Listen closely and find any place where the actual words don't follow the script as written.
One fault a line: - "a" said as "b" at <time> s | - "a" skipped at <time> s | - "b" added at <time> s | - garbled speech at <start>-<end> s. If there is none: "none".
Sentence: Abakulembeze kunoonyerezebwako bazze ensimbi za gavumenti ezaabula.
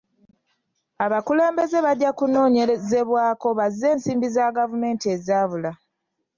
- "bajja" added at 1.9 s